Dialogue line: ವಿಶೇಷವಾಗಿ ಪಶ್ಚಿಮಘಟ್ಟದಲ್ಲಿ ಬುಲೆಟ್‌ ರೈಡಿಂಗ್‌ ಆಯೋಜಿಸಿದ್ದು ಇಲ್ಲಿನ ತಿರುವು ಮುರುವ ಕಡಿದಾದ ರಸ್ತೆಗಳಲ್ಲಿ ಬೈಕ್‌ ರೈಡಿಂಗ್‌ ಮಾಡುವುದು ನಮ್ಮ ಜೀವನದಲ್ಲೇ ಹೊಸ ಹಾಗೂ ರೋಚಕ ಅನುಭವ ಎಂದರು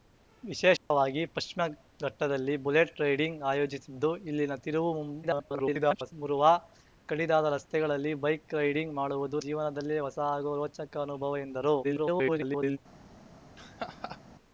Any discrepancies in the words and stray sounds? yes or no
yes